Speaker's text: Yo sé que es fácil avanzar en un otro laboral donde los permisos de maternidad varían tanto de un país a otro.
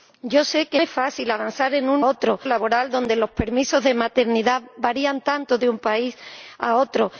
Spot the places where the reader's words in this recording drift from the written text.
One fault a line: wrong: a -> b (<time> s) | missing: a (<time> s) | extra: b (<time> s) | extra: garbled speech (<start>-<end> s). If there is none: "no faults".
no faults